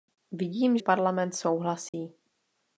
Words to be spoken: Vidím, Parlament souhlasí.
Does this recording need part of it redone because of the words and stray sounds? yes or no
yes